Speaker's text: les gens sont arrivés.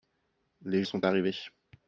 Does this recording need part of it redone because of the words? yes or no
yes